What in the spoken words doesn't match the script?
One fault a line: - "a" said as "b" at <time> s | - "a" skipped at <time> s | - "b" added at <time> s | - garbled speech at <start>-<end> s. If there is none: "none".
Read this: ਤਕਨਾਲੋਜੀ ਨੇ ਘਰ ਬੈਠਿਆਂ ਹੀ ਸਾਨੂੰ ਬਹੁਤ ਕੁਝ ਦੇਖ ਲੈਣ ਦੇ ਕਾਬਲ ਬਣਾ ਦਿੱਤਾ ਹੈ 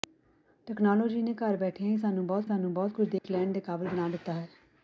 - "ਸਾਨੂੰ ਬਹੁਤ" added at 2.4 s